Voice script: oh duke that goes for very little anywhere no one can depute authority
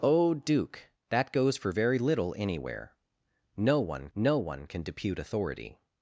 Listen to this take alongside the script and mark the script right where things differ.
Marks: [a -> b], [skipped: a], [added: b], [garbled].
oh duke that goes for very little anywhere no one [added: no one] can depute authority